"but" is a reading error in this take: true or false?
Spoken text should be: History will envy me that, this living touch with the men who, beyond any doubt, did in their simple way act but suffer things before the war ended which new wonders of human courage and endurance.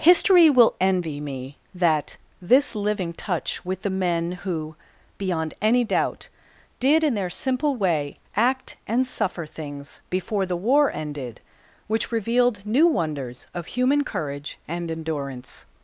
true